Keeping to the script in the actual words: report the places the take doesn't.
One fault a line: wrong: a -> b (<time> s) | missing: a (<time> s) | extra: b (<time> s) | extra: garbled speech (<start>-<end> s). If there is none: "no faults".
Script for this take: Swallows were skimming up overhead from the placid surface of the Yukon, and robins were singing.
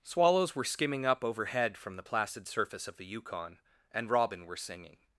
wrong: robins -> robin (4.1 s)